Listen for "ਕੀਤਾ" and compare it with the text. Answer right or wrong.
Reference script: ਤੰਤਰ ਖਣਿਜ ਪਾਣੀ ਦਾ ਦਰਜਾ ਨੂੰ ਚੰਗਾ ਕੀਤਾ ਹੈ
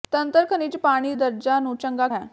wrong